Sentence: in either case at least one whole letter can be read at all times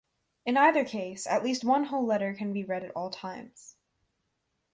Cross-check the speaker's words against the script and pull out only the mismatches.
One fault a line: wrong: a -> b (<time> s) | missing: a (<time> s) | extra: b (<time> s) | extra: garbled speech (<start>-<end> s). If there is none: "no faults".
no faults